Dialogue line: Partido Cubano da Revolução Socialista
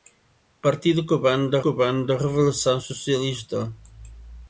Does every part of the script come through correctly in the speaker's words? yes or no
no